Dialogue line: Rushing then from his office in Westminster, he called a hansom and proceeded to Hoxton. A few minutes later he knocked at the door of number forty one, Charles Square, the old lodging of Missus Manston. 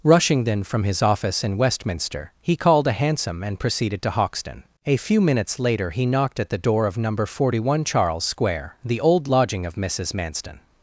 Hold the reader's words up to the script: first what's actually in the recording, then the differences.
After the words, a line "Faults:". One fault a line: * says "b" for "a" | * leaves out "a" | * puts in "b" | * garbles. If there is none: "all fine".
Rushing then from his office in Westminster, he called a hansom and proceeded to Hoxton. A few minutes later he knocked at the door of number forty one, Charles Square, the old lodging of Missus Manston.
Faults:
all fine